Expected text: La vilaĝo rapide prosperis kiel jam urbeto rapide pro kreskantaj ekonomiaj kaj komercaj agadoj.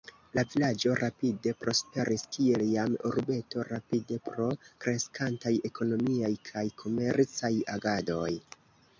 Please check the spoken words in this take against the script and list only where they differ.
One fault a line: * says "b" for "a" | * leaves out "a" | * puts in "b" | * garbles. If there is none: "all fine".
all fine